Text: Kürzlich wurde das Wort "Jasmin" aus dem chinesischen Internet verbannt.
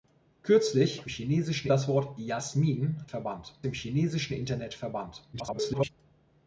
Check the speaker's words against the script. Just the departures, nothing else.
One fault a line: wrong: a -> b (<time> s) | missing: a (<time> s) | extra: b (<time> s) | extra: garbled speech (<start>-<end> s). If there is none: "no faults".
wrong: wurde -> chinesischen (1.1 s)
wrong: aus -> verbannt (3.0 s)
extra: garbled speech (5.3-5.9 s)